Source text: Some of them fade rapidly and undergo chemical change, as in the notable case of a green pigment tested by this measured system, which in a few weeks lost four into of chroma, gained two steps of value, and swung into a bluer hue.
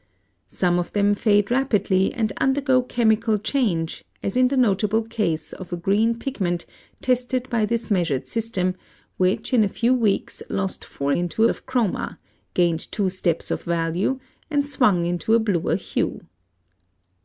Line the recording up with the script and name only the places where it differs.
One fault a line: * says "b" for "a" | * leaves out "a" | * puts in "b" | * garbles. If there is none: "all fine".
all fine